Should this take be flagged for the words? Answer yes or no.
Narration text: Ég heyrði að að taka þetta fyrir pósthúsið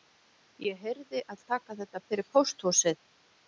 no